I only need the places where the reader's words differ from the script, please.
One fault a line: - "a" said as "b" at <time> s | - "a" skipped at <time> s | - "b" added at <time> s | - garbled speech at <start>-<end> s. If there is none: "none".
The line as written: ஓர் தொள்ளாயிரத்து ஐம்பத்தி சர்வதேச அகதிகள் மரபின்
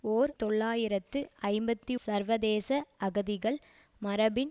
none